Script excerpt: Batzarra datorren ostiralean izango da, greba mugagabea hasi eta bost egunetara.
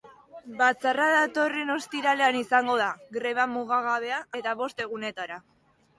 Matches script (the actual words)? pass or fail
fail